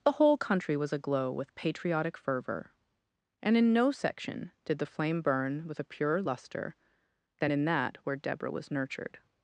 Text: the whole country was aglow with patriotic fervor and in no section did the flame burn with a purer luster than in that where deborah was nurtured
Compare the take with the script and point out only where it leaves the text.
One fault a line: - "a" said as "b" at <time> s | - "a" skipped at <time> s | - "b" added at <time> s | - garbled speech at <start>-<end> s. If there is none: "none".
none